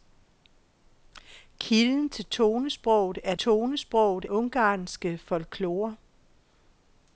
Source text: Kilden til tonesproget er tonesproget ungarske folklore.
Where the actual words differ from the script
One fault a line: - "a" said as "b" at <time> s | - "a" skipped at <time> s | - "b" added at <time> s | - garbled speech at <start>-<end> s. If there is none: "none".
none